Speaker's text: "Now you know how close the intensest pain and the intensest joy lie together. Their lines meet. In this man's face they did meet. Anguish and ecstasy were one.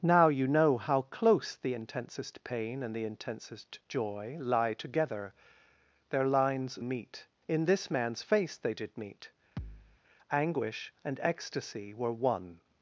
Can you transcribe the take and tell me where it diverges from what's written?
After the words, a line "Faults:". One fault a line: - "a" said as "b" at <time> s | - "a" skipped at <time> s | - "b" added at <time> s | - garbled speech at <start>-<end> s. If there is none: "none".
"Now you know how close the intensest pain and the intensest joy lie together. Their lines meet. In this man's face they did meet. Anguish and ecstasy were one.
Faults:
none